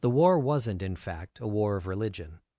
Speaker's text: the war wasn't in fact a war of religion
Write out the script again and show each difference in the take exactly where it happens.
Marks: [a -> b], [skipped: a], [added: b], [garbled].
the war wasn't in fact a war of religion